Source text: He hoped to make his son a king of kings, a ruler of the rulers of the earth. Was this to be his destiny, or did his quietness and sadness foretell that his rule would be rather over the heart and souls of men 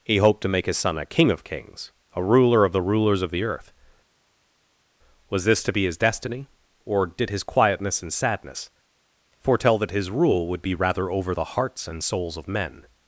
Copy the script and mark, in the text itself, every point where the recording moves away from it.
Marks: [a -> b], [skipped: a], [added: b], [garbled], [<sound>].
He hoped to make his son a king of kings, a ruler of the rulers of the earth. Was this to be his destiny, or did his quietness and sadness foretell that his rule would be rather over the [heart -> hearts] and souls of men